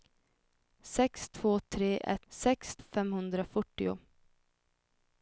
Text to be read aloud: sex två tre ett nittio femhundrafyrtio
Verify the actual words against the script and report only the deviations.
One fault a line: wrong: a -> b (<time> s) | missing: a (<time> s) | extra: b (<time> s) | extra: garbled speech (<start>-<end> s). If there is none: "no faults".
wrong: nittio -> sex (2.3 s)